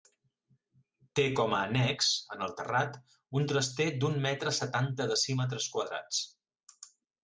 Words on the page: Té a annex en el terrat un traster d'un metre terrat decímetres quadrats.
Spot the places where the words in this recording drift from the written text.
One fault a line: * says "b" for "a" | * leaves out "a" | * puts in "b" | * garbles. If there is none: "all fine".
* puts in "com"
* says "setanta" for "terrat"